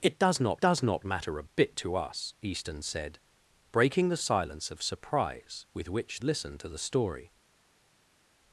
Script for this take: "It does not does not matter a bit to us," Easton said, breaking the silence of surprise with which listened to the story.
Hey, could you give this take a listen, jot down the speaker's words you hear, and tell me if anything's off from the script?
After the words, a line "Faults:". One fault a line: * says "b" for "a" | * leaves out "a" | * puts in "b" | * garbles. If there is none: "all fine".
"It does not does not matter a bit to us," Easton said, breaking the silence of surprise with which listened to the story.
Faults:
all fine